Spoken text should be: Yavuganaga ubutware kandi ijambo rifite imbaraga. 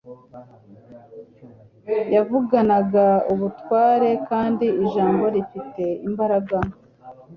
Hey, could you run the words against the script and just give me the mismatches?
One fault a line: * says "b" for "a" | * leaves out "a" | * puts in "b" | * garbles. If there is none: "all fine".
all fine